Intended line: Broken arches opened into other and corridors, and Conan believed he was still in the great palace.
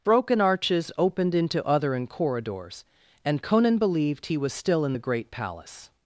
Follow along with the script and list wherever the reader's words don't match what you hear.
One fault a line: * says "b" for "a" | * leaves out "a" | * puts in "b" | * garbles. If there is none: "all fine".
all fine